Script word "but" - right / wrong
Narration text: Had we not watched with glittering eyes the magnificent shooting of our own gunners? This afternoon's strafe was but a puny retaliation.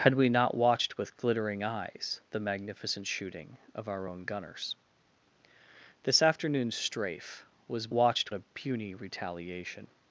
wrong